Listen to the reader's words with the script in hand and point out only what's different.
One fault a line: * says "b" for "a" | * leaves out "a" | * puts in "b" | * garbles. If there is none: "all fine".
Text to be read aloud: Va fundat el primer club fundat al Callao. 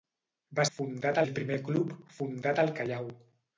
all fine